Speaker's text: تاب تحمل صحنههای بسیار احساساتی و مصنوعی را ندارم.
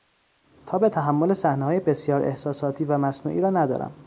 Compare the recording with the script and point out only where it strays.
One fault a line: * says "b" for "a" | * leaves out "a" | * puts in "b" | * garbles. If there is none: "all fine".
all fine